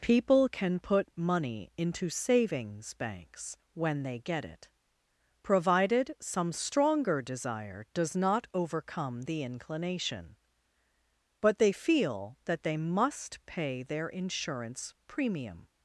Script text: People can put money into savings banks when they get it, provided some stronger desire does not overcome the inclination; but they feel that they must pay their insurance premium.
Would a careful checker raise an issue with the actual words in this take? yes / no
no